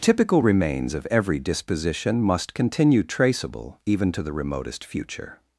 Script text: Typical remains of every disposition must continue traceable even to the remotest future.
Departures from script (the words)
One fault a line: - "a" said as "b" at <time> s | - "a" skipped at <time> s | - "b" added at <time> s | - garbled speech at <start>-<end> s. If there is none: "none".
none